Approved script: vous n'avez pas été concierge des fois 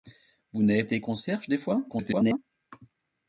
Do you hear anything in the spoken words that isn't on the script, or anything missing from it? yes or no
yes